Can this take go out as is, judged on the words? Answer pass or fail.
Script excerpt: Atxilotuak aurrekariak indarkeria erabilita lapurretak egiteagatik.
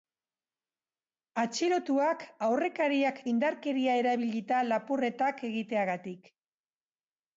pass